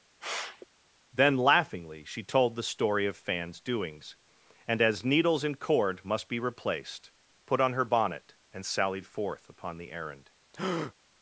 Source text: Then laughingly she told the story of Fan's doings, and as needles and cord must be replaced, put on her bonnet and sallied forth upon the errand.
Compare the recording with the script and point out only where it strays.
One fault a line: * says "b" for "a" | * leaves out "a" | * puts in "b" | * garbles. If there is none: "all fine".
all fine